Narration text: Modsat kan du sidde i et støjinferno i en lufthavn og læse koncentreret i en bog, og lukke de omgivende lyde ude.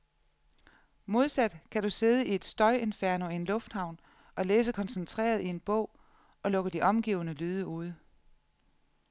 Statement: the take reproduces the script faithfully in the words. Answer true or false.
true